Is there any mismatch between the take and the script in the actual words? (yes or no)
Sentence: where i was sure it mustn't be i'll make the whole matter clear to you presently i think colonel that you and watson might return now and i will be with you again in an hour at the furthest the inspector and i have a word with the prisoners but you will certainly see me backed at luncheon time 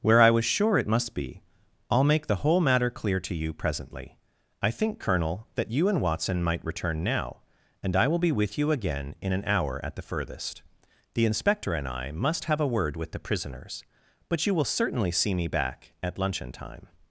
yes